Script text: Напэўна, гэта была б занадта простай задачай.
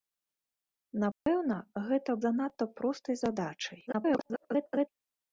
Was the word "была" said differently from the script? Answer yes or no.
yes